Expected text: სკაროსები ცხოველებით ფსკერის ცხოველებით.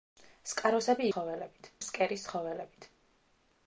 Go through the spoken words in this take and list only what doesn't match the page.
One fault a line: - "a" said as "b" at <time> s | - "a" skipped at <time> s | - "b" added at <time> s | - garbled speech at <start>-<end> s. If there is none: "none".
none